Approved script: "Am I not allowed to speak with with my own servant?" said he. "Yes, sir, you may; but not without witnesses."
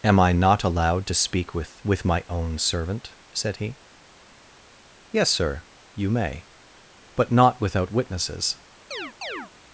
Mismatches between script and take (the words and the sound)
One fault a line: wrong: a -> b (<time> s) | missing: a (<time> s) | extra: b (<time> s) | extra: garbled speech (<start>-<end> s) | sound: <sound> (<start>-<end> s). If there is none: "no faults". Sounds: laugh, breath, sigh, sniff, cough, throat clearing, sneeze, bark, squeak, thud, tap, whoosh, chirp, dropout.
sound: chirp (8.9-9.5 s)